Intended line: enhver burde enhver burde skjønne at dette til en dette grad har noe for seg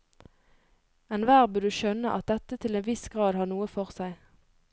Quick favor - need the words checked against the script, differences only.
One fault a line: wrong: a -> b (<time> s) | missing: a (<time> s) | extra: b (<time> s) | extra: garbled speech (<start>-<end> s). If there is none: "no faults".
missing: enhver burde (1.7 s)
wrong: dette -> viss (2.9 s)